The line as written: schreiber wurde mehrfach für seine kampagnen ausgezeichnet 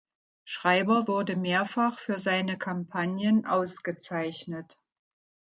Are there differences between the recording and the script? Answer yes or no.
no